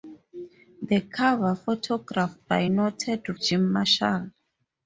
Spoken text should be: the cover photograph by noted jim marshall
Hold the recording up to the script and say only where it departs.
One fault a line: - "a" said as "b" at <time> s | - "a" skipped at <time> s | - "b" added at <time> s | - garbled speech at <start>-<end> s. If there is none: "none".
none